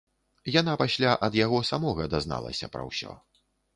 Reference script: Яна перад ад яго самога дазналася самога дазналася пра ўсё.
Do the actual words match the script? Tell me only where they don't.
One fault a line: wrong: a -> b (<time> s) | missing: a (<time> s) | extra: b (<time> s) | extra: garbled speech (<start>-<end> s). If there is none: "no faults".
wrong: перад -> пасля (0.8 s)
missing: самога дазналася (2.7 s)